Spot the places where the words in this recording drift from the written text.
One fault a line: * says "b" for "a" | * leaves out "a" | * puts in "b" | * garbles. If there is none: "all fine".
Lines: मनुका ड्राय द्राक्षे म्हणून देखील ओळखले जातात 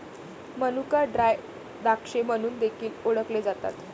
all fine